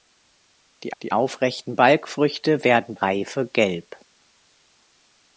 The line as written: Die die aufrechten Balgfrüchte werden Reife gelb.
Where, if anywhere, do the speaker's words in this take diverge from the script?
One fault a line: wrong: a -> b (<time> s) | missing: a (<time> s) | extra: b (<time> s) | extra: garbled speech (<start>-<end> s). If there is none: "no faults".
no faults